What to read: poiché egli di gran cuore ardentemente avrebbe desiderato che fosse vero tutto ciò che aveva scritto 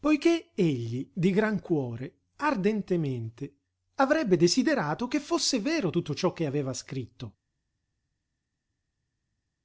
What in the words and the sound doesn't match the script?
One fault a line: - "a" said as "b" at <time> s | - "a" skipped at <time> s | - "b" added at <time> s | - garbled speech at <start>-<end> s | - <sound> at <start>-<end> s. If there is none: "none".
none